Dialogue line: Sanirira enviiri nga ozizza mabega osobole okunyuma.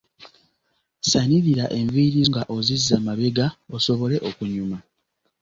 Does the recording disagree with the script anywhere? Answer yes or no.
no